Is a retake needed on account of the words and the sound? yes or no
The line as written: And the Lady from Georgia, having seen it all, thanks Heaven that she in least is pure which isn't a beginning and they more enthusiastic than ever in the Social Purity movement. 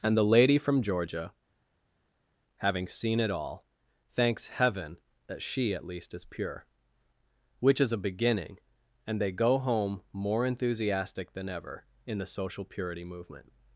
yes